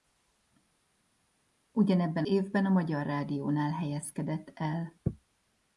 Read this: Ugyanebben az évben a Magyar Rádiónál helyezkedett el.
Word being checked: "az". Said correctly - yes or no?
no